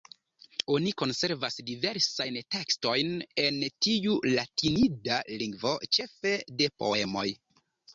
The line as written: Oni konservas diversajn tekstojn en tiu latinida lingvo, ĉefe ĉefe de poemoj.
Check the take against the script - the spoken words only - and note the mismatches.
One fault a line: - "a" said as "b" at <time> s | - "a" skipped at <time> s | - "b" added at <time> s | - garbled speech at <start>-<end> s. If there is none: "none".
- "ĉefe" skipped at 6.4 s